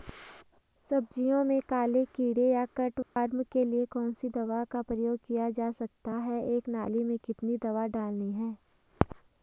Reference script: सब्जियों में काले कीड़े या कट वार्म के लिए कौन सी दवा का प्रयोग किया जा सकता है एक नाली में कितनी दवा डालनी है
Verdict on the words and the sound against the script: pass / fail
fail